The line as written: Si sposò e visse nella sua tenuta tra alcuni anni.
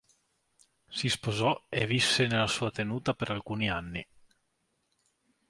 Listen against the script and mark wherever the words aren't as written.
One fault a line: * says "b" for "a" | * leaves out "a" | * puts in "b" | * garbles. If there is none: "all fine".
* says "per" for "tra"